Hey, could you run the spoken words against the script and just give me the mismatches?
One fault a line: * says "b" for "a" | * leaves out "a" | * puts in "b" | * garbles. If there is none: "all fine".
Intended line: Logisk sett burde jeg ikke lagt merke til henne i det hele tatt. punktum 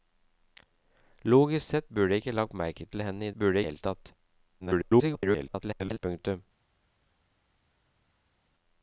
* says "burde" for "det"
* garbles